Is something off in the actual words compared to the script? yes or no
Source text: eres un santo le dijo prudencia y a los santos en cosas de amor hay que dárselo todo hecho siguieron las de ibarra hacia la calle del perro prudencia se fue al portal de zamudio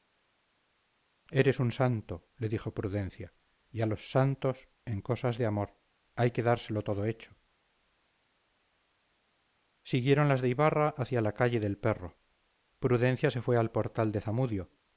no